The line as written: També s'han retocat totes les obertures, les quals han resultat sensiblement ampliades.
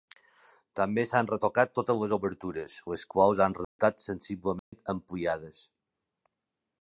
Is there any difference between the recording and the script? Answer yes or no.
no